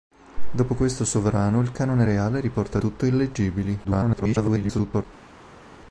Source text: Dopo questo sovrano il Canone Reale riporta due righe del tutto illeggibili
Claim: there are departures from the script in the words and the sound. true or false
true